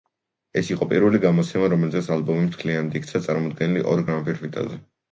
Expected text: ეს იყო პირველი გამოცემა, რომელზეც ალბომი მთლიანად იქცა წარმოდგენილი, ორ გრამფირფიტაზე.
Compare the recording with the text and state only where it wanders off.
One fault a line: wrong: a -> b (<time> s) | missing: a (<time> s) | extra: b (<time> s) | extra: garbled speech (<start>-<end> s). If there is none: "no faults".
no faults